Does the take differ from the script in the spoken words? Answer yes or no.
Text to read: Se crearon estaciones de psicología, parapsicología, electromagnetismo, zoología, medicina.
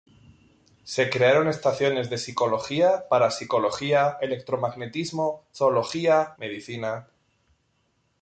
no